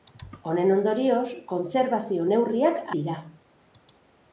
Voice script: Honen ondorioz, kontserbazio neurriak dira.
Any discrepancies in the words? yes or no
no